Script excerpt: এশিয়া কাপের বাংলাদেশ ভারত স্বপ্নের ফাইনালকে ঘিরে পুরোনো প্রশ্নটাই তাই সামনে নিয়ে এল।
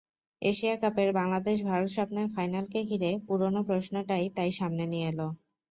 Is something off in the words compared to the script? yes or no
no